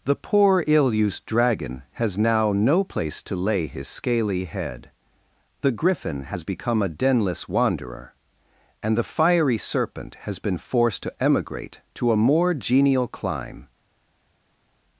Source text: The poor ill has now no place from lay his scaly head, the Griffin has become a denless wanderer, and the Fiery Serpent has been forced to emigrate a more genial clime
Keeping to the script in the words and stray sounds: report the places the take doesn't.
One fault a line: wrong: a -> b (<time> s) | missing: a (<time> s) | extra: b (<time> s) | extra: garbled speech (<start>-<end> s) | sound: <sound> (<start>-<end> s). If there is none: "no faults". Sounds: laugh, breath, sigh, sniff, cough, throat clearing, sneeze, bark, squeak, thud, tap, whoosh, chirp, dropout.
extra: used Dragon (0.9 s)
wrong: from -> to (3.2 s)
extra: to (11.9 s)